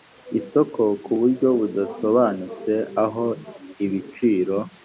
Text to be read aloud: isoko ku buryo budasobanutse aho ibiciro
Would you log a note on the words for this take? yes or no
no